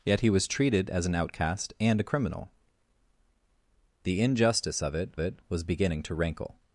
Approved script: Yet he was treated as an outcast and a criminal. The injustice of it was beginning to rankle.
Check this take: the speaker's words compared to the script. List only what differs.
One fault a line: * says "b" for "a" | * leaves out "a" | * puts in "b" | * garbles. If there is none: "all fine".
* puts in "it"